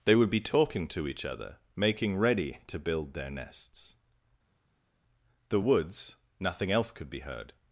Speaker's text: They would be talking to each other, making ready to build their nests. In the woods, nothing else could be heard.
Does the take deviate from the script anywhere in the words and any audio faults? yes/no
yes